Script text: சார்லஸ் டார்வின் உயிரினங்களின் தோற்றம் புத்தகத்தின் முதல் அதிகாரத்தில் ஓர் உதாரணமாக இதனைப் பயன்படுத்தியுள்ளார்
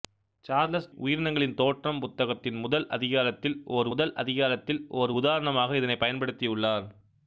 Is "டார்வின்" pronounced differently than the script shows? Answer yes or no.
yes